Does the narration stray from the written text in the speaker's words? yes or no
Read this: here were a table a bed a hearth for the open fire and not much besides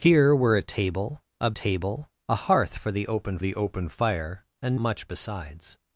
yes